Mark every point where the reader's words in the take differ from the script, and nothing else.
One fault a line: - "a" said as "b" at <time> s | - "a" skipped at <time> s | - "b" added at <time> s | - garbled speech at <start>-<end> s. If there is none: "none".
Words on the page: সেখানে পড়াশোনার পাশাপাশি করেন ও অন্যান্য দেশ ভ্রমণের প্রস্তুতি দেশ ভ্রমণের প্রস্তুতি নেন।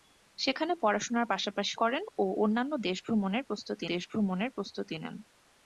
none